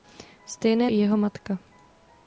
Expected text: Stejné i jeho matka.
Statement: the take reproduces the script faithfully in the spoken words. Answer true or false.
true